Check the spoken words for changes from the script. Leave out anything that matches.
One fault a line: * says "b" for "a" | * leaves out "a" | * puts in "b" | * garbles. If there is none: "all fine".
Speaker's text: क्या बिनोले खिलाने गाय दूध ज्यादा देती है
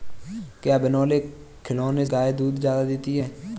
all fine